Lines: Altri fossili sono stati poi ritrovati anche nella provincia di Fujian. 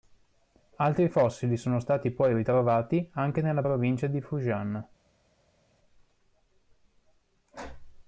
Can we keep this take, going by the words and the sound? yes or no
yes